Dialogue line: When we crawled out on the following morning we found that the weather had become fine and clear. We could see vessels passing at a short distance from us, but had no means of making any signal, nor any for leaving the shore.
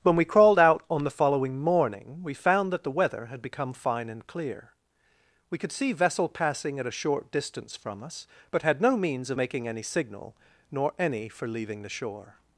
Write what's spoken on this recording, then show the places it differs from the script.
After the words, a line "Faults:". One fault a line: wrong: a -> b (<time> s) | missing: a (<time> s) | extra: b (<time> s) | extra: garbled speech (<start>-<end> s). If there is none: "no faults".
When we crawled out on the following morning we found that the weather had become fine and clear. We could see vessel passing at a short distance from us, but had no means of making any signal, nor any for leaving the shore.
Faults:
wrong: vessels -> vessel (5.9 s)